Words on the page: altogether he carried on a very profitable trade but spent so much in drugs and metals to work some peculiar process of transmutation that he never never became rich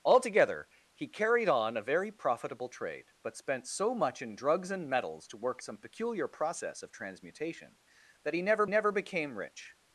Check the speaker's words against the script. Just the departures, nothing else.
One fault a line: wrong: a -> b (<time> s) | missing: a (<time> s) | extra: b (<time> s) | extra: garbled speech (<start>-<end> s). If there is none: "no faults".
no faults